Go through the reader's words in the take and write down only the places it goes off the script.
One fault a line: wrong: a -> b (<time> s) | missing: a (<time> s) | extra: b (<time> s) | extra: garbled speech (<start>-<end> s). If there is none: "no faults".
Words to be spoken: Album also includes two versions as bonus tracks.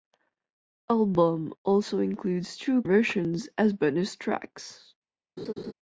no faults